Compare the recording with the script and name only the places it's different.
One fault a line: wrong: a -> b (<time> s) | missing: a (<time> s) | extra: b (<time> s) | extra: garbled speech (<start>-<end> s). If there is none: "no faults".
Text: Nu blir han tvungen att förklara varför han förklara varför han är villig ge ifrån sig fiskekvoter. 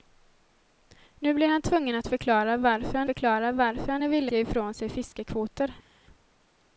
no faults